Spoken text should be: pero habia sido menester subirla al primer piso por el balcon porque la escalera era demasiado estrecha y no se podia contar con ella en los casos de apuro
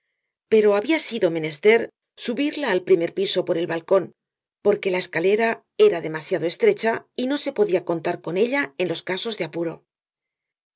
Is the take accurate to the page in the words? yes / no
yes